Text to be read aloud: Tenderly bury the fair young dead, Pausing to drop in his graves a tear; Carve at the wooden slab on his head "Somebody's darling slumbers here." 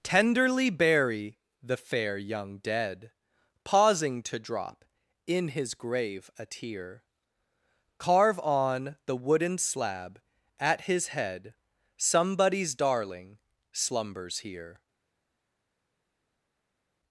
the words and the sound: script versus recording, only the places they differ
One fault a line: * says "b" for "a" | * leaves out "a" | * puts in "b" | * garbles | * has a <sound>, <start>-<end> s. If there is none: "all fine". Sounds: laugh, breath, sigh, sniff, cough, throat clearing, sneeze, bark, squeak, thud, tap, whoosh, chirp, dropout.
* says "grave" for "graves"
* says "on" for "at"
* says "at" for "on"